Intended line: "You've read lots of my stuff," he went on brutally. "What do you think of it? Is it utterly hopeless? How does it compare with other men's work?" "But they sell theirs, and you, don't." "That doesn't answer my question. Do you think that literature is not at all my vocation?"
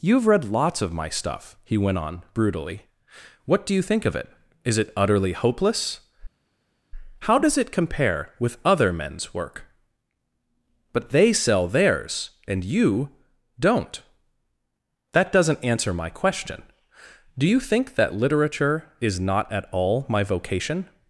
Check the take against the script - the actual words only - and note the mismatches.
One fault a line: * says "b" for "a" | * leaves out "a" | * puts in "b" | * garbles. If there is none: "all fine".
all fine